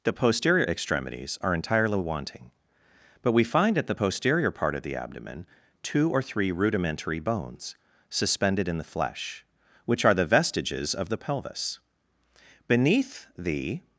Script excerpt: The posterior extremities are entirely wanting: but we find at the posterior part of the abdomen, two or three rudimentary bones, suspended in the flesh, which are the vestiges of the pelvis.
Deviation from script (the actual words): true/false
true